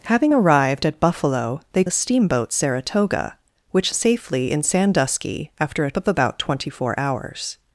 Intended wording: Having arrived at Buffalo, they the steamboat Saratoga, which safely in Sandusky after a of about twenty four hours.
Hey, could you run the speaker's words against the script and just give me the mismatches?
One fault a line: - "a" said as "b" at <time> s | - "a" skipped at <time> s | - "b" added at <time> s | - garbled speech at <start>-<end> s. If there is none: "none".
none